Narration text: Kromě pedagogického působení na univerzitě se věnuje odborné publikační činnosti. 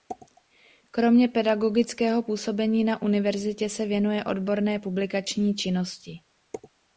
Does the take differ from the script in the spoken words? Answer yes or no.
no